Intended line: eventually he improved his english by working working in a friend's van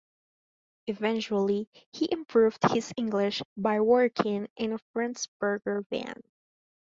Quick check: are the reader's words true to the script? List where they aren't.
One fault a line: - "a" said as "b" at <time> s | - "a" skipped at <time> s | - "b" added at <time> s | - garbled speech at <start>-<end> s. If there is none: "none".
- "working" skipped at 4.5 s
- "burger" added at 5.4 s